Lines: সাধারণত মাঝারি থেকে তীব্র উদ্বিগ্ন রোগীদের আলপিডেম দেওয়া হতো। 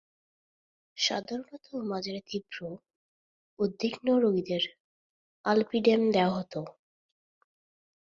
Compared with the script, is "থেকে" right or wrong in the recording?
wrong